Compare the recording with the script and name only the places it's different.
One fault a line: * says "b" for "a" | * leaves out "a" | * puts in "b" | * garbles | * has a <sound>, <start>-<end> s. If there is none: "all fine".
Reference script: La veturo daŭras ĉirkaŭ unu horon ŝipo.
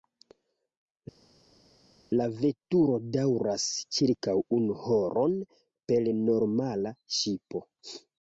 * puts in "per normala"